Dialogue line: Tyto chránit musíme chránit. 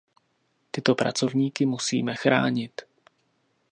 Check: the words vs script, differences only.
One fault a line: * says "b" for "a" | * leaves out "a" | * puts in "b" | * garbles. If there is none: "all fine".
* says "pracovníky" for "chránit"